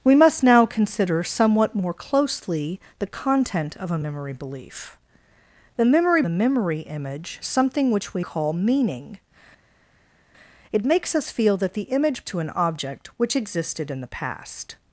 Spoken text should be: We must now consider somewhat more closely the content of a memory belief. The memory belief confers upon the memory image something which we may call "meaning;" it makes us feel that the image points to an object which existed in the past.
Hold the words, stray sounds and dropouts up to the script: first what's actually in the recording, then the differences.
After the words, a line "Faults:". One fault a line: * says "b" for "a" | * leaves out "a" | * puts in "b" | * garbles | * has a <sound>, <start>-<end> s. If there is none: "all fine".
We must now consider somewhat more closely the content of a memory belief. The memory the memory image something which we call "meaning;" it makes us feel that the image to an object which existed in the past.
Faults:
* leaves out "belief confers upon"
* leaves out "may"
* leaves out "points"